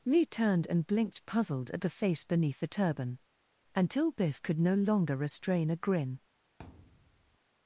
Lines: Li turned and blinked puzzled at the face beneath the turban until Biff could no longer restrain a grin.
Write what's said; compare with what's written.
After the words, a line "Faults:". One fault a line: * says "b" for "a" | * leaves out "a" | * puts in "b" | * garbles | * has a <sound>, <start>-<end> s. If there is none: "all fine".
Li turned and blinked puzzled at the face beneath the turban until Biff could no longer restrain a grin.
Faults:
* has a thud, 6.6-7.4 s